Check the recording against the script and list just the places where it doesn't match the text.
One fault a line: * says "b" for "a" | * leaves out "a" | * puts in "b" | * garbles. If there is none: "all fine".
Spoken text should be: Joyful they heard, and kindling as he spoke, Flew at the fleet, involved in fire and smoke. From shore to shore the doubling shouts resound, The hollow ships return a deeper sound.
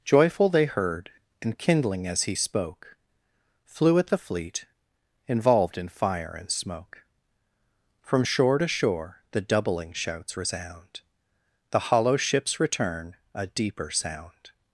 all fine